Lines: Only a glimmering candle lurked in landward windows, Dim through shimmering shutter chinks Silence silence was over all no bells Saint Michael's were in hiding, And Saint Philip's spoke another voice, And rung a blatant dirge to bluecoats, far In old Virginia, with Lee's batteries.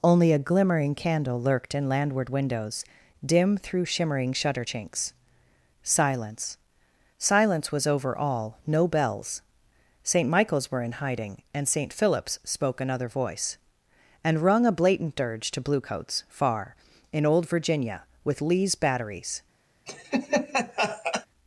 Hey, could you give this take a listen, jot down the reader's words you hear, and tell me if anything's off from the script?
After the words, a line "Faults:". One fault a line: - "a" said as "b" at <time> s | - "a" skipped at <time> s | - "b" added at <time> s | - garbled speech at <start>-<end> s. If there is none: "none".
Only a glimmering candle lurked in landward windows, Dim through shimmering shutter chinks Silence silence was over all no bells Saint Michael's were in hiding, And Saint Philip's spoke another voice, And rung a blatant dirge to bluecoats, far In old Virginia, with Lee's batteries.
Faults:
none